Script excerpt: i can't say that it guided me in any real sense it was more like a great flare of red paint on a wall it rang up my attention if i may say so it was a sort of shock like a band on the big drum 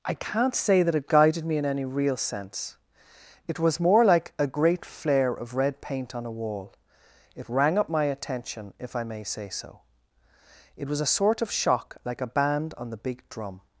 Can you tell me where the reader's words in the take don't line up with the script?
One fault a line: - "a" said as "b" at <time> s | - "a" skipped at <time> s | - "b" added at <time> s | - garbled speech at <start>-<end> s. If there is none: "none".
none